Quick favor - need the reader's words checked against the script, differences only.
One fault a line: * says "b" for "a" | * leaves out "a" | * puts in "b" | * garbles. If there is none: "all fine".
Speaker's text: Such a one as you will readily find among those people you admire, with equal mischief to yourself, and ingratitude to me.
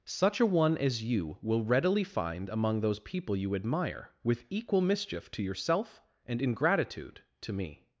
all fine